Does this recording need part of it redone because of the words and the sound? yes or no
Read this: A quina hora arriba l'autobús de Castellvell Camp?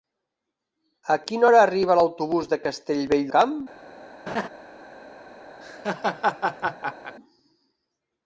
yes